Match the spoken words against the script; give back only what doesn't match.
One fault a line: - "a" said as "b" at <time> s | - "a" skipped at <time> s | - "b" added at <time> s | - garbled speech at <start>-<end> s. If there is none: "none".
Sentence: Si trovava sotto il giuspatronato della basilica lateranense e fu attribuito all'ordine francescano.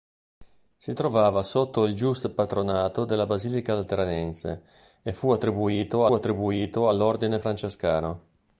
- "attribuito" added at 6.1 s